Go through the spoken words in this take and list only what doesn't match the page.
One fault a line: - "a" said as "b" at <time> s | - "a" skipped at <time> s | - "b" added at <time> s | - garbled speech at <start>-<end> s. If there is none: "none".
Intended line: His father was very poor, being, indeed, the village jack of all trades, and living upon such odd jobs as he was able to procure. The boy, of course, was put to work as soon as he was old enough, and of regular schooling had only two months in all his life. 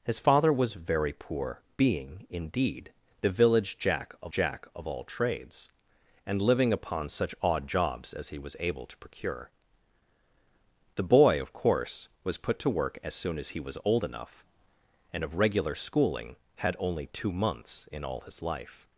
- "jack of" added at 4.3 s